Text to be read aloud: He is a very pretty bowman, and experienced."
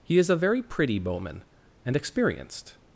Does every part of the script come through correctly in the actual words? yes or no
yes